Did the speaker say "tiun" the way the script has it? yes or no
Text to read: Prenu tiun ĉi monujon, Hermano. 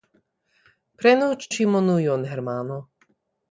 no